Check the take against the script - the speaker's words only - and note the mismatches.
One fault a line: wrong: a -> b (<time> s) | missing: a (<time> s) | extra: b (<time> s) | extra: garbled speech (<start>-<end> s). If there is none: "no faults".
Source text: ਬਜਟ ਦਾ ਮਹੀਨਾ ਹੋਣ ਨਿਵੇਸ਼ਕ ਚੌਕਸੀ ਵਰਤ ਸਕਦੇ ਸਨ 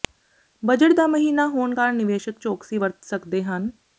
extra: ਕਾਰਨ (1.7 s)
wrong: ਸਨ -> ਹਨ (3.4 s)